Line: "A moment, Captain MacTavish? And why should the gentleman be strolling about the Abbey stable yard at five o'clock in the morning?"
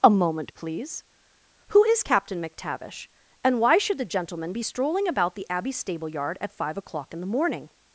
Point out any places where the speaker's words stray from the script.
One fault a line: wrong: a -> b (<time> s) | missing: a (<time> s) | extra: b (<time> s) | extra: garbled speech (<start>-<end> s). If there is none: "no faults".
extra: please Who is (0.5 s)